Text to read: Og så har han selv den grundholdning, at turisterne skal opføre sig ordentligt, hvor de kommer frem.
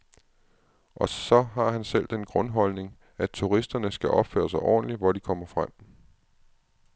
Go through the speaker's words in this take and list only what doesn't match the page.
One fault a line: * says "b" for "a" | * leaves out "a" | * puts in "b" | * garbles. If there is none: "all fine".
all fine